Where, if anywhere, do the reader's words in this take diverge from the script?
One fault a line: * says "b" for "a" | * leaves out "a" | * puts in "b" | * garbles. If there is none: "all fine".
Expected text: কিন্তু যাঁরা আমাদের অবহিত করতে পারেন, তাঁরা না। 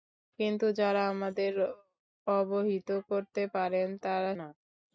all fine